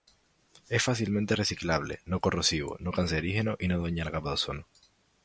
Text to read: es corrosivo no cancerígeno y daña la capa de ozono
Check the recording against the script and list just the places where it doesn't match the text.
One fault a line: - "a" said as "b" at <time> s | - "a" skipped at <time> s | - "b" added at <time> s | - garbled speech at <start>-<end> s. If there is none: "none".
- "fácilmente reciclable no" added at 0.8 s
- "no" added at 3.7 s